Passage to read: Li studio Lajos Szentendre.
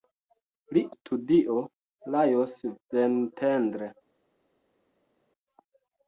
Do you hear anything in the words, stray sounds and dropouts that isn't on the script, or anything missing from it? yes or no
no